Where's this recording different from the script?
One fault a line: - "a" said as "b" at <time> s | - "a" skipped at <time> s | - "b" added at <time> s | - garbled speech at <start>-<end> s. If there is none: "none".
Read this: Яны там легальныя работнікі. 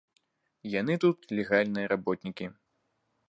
- "там" said as "тут" at 1.0 s